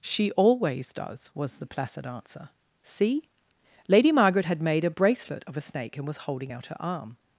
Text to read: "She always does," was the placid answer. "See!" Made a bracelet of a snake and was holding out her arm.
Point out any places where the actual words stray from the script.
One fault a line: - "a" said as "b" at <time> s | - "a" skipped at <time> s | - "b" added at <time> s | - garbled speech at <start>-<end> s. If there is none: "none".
- "Lady Margaret had" added at 3.9 s